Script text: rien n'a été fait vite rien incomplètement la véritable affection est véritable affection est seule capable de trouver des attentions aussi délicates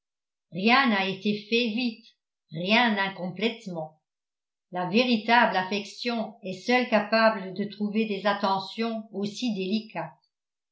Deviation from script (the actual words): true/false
true